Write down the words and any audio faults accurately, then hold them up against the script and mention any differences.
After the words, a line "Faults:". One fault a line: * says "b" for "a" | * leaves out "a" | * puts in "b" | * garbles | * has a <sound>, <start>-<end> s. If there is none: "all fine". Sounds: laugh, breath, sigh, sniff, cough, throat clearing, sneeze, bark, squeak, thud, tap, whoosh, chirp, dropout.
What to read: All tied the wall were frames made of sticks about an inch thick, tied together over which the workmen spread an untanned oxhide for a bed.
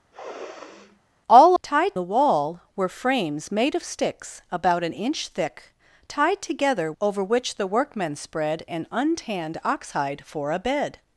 All tied the wall were frames made of sticks about an inch thick, tied together over which the workmen spread an untanned oxhide for a bed.
Faults:
* has a sniff, 0.1-1.0 s